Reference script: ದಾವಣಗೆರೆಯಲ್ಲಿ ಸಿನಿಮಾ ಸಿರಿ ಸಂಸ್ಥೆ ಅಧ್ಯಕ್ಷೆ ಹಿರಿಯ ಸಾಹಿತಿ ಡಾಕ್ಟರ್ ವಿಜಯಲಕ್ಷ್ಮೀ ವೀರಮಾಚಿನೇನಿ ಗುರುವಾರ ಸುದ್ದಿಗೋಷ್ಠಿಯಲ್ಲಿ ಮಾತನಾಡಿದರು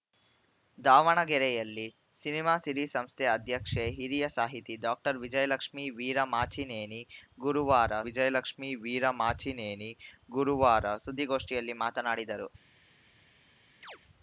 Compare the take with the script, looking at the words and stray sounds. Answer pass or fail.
fail